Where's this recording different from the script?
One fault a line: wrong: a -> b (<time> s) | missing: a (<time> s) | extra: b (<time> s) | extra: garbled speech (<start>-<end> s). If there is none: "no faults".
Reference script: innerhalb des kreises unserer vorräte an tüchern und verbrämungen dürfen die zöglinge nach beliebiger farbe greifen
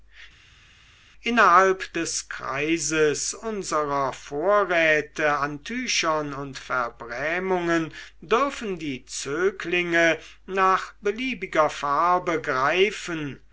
no faults